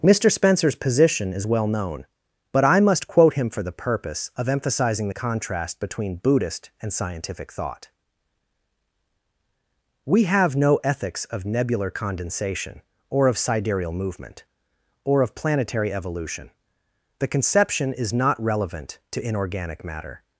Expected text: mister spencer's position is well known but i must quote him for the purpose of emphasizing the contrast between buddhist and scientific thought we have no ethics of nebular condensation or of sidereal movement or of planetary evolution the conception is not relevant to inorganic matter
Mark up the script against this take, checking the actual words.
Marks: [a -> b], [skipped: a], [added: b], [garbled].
mister spencer's position is well known but i must quote him for the purpose of emphasizing the contrast between buddhist and scientific thought we have no ethics of nebular condensation or of sidereal movement or of planetary evolution the conception is not relevant to inorganic matter